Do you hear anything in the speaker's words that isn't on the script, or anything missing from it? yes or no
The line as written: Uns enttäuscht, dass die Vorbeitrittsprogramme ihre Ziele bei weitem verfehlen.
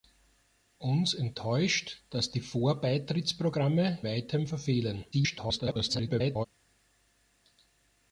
yes